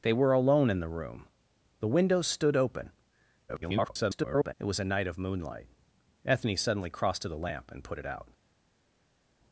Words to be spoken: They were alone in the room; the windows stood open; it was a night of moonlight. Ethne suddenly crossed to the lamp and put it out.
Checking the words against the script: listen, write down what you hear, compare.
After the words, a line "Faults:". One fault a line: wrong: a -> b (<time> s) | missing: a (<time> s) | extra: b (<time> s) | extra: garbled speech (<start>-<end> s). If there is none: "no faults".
They were alone in the room; the windows stood open; [garbled] it was a night of moonlight. Ethne suddenly crossed to the lamp and put it out.
Faults:
extra: garbled speech (3.5-4.5 s)